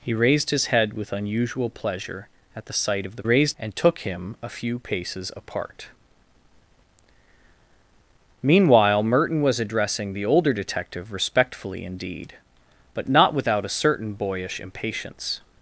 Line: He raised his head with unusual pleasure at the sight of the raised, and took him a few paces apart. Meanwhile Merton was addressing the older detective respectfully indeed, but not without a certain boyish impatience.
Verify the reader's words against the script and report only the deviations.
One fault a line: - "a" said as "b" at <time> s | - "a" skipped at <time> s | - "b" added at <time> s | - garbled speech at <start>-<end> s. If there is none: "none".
none